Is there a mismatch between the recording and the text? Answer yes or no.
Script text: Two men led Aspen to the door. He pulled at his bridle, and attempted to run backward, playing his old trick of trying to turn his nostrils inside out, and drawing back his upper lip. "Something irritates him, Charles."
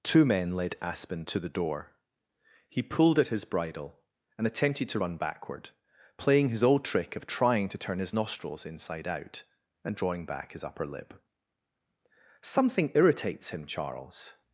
no